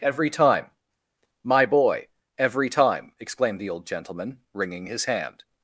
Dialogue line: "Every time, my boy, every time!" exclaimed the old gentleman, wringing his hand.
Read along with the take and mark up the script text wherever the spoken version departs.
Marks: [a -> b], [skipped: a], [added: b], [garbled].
"Every time, my boy, every time!" exclaimed the old gentleman, wringing his hand.